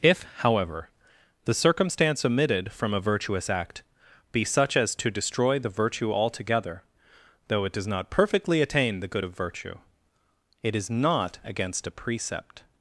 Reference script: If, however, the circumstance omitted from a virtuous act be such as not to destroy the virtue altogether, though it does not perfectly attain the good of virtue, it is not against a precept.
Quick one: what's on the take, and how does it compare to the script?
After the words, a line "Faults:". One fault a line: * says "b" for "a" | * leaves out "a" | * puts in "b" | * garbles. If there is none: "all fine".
If, however, the circumstance omitted from a virtuous act be such as to destroy the virtue altogether, though it does not perfectly attain the good of virtue, it is not against a precept.
Faults:
* leaves out "not"